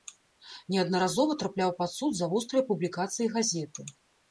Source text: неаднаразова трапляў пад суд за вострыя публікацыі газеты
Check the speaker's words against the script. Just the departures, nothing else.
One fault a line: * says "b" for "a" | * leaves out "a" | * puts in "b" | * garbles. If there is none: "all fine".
all fine